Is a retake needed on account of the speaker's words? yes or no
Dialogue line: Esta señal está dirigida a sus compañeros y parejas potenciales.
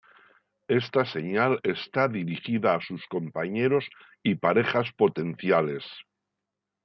no